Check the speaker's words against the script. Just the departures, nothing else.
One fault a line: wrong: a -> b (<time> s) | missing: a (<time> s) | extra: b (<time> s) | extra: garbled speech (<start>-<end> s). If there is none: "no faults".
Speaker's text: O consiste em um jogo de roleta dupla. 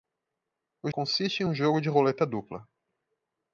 no faults